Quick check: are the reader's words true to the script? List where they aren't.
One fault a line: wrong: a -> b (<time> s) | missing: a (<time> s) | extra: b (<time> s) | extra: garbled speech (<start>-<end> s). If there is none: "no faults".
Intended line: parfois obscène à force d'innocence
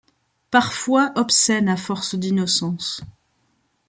no faults